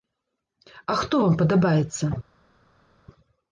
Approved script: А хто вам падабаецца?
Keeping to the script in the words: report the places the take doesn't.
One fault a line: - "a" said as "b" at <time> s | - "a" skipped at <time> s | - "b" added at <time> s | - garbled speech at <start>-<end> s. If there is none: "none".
none